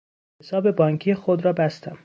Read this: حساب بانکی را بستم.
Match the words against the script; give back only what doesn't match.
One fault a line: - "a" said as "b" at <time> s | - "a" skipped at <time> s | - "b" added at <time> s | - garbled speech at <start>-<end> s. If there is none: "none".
- "خود" added at 1.1 s